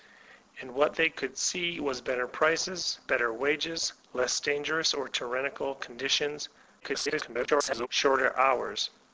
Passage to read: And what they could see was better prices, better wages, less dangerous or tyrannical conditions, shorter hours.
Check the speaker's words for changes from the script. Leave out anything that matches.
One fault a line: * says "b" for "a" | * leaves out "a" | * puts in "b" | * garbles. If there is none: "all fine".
* garbles